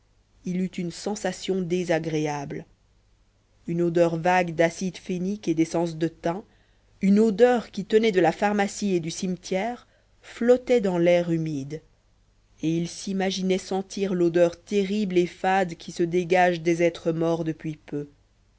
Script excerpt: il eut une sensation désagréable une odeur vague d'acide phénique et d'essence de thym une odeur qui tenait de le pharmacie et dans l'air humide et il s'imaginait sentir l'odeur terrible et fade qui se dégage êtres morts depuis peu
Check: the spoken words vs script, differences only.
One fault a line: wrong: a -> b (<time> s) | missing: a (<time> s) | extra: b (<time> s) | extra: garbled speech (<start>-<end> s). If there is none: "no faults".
wrong: le -> la (8.2 s)
extra: du cimetière flottait (9.0 s)
extra: des (16.6 s)